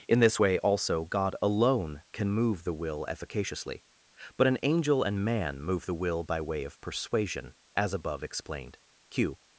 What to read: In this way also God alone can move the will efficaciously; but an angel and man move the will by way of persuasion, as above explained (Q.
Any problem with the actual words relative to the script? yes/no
no